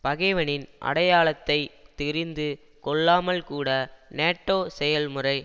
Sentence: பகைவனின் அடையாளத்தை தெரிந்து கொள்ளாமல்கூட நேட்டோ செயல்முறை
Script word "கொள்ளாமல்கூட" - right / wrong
right